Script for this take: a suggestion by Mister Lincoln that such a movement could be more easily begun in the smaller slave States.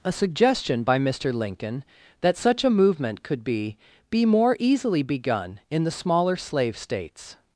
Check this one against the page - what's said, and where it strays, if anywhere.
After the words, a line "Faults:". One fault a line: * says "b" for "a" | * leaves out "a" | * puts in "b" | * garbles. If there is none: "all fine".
a suggestion by Mister Lincoln that such a movement could be be more easily begun in the smaller slave States.
Faults:
* puts in "be"